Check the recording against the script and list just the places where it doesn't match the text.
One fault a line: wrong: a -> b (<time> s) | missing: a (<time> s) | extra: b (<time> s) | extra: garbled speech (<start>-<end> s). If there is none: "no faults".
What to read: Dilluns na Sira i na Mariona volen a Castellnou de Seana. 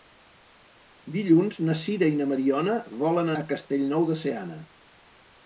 no faults